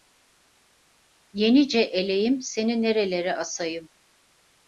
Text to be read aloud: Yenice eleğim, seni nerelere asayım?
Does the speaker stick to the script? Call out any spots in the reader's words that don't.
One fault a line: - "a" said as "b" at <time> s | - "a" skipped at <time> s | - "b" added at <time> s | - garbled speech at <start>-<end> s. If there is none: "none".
none